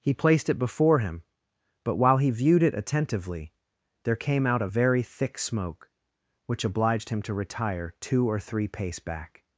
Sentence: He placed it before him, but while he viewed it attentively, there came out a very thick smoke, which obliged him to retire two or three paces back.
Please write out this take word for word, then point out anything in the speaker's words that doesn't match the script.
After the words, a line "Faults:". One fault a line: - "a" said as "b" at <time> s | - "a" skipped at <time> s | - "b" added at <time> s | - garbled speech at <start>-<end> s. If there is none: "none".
He placed it before him, but while he viewed it attentively, there came out a very thick smoke, which obliged him to retire two or three pace back.
Faults:
- "paces" said as "pace" at 8.7 s